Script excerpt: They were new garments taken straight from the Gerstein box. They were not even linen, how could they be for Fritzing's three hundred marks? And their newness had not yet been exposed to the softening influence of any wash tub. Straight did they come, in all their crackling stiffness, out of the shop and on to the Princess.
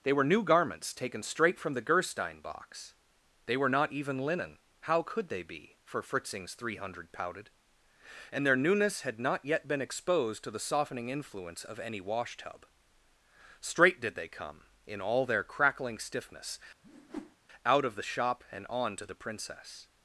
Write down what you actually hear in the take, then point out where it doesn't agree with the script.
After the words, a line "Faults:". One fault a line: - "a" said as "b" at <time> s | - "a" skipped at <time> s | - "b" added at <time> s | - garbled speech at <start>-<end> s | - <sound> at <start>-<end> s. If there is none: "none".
They were new garments taken straight from the Gerstein box. They were not even linen, how could they be for Fritzing's three hundred pouted? And their newness had not yet been exposed to the softening influence of any wash tub. Straight did they come, in all their crackling stiffness, out of the shop and on to the Princess.
Faults:
- "marks" said as "pouted" at 7.1 s
- whoosh at 16.8-17.4 s